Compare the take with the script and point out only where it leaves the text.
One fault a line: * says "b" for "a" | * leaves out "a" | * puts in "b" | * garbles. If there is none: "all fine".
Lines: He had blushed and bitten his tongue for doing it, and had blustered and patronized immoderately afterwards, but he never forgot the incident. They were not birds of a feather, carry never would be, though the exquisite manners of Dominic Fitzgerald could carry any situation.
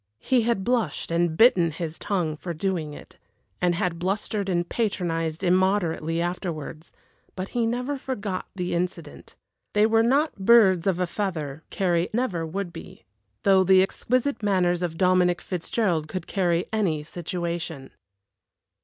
all fine